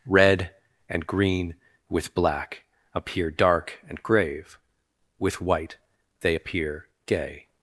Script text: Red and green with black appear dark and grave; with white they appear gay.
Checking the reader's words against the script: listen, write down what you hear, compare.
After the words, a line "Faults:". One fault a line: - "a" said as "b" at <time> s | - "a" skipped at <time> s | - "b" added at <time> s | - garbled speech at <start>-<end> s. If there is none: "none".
Red and green with black appear dark and grave; with white they appear gay.
Faults:
none